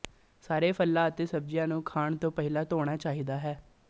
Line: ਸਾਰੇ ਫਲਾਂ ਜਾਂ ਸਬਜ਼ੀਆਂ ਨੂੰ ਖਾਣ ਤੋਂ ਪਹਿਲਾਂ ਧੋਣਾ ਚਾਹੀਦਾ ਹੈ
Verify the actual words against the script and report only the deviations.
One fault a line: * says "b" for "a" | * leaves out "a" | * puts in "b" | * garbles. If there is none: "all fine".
* says "ਅਤੇ" for "ਜਾਂ"